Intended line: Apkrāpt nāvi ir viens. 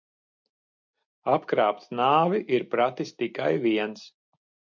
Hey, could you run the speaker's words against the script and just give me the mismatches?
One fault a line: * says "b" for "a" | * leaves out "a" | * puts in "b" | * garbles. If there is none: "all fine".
* puts in "pratis tikai"